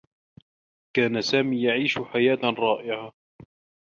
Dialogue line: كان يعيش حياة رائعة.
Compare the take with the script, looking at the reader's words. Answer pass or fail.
fail